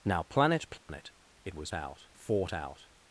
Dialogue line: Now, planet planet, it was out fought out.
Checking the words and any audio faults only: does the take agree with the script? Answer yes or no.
no